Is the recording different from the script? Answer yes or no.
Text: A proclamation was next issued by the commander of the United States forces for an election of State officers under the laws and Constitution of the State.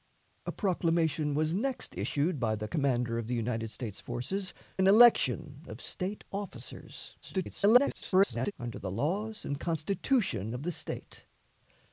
yes